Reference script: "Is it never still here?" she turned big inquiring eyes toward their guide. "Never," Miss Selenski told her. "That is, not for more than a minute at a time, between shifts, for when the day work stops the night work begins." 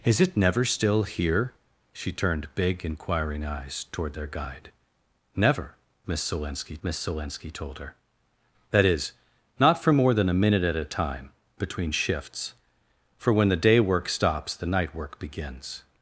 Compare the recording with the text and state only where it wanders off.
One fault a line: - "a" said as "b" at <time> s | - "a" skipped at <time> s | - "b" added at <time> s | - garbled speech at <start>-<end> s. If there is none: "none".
- "Miss Selenski" added at 6.8 s